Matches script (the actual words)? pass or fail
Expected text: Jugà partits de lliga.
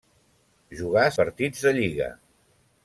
pass